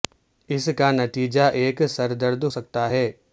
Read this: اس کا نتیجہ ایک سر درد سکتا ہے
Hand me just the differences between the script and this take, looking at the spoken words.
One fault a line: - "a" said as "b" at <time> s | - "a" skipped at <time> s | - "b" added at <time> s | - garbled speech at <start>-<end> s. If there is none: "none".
none